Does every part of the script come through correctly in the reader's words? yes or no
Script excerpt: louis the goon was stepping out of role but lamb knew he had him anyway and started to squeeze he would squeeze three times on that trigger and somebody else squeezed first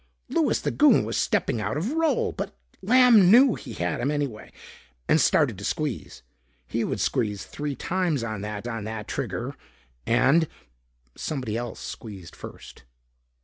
no